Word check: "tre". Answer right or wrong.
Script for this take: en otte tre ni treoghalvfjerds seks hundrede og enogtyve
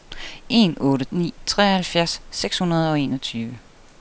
wrong